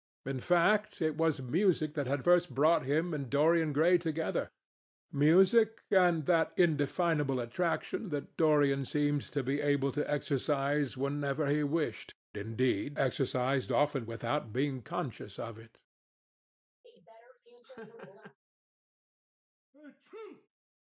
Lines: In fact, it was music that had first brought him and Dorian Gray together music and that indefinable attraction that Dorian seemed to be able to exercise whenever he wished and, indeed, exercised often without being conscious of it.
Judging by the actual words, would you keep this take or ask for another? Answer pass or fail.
fail